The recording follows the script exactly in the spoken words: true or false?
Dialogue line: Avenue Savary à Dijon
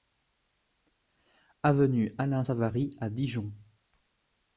false